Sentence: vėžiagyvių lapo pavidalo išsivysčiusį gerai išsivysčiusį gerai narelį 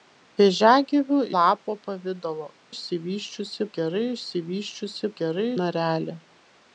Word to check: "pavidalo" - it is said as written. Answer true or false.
true